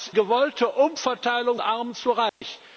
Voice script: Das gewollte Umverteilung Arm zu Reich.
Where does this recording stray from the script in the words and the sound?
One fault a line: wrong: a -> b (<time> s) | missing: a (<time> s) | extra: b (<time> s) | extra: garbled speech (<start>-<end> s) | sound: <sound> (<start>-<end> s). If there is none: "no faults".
sound: dropout (2.3-2.4 s)